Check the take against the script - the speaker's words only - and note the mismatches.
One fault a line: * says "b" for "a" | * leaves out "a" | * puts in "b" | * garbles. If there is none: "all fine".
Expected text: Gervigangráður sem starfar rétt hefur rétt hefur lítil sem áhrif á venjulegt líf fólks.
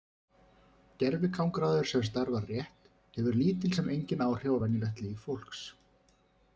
* leaves out "rétt hefur"
* puts in "engin"